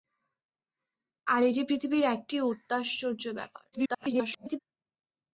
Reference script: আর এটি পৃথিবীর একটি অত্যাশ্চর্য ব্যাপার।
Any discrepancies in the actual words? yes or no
yes